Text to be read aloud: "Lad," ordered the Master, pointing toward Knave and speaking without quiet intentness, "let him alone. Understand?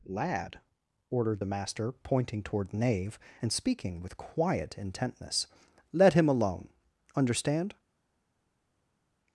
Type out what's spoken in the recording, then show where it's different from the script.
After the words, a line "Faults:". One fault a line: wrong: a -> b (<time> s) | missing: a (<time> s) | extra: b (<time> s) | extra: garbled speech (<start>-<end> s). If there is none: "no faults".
"Lad," ordered the Master, pointing toward Knave and speaking with quiet intentness, "let him alone. Understand?
Faults:
wrong: without -> with (4.0 s)